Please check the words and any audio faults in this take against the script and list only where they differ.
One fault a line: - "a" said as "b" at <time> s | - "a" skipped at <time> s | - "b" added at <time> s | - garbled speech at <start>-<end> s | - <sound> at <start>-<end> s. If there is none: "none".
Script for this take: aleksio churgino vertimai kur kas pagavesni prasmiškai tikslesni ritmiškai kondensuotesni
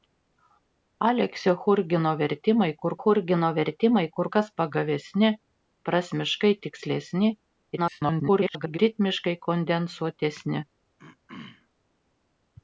- "churgino vertimai kur" added at 3.0 s
- garbled speech at 7.8-8.8 s
- throat clearing at 11.0-11.7 s